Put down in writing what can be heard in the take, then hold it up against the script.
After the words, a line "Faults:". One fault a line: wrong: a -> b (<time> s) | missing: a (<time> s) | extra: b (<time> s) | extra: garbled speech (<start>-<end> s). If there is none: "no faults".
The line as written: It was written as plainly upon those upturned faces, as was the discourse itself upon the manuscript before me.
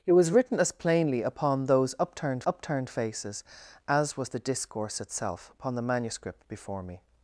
It was written as plainly upon those upturned upturned faces, as was the discourse itself upon the manuscript before me.
Faults:
extra: upturned (2.5 s)